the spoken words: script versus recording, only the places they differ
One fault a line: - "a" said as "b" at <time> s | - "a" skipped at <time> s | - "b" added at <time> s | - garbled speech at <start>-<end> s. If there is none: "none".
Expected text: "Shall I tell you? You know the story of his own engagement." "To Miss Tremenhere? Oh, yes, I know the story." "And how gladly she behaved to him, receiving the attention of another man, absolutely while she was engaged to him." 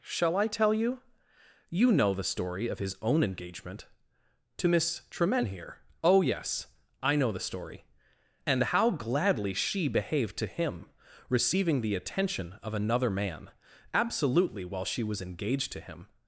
none